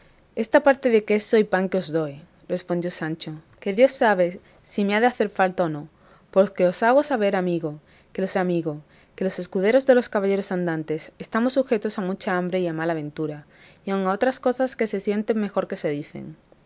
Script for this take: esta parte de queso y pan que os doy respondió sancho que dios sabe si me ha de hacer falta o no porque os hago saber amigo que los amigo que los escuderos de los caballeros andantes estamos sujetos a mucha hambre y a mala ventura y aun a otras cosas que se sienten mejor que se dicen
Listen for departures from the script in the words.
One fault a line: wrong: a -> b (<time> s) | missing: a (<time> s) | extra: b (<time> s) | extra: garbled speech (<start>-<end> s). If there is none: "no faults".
no faults